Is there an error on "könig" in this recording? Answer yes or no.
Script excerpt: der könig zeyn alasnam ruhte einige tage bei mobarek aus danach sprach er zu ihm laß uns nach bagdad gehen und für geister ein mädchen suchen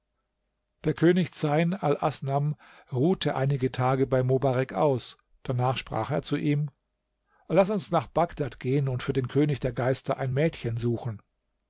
no